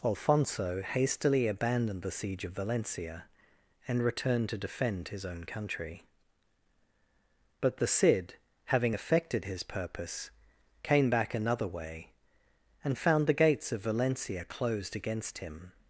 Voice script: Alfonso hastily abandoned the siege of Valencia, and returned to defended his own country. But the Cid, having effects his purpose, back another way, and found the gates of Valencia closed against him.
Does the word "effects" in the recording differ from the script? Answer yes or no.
yes